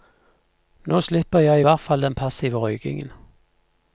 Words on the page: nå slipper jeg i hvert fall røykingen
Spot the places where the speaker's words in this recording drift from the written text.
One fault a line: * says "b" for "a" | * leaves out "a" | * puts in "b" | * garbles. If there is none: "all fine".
* puts in "den passive"